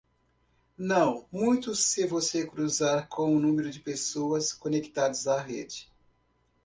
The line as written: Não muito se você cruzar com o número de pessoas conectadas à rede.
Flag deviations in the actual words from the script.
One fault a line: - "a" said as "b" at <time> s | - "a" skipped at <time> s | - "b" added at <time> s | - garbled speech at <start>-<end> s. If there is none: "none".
none